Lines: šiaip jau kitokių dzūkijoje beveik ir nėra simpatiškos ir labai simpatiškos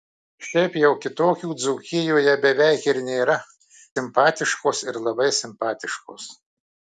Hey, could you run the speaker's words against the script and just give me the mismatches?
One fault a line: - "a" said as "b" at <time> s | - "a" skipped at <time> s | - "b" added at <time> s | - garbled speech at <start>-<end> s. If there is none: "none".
none